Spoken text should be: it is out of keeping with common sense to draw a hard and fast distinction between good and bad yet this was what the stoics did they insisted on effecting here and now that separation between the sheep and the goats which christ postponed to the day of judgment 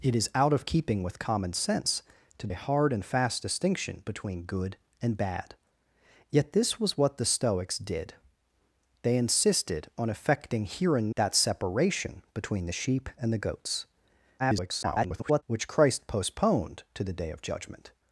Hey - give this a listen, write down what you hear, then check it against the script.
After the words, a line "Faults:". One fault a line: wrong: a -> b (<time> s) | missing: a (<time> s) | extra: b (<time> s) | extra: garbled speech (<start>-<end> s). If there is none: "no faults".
it is out of keeping with common sense to a hard and fast distinction between good and bad yet this was what the stoics did they insisted on effecting here and that separation between the sheep and the goats [garbled] which christ postponed to the day of judgment
Faults:
missing: draw (2.5 s)
missing: now (11.1 s)
extra: garbled speech (14.4-15.4 s)